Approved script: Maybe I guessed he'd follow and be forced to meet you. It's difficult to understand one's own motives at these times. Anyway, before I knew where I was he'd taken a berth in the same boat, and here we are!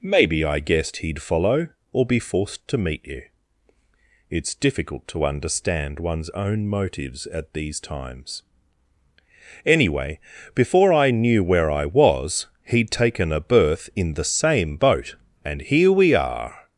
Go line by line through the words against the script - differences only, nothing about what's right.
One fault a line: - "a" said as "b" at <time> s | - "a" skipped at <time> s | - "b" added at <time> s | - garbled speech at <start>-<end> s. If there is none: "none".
- "and" said as "or" at 1.9 s